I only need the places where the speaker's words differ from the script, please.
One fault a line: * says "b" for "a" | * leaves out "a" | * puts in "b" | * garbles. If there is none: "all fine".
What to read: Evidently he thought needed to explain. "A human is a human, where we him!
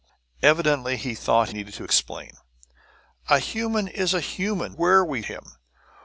all fine